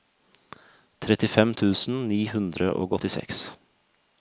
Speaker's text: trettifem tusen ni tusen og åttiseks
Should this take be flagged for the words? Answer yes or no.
yes